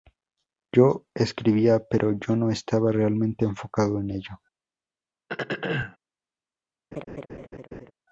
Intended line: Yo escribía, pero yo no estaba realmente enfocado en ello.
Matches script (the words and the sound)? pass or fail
fail